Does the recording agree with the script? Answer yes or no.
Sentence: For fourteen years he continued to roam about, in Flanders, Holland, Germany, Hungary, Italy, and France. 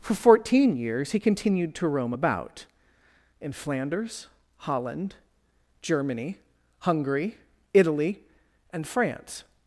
yes